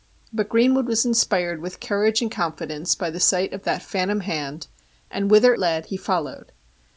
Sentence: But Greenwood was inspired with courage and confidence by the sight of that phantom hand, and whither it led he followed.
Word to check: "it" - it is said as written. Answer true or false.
false